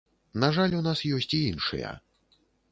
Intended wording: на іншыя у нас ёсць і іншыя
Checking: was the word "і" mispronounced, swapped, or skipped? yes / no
no